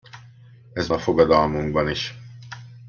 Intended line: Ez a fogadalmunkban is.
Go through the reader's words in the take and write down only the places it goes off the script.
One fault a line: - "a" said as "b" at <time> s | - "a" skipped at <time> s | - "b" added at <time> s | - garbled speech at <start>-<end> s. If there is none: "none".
none